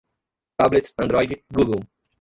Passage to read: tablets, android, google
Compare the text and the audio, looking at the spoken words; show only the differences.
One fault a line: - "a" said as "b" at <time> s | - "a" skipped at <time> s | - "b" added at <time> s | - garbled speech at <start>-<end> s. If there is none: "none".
none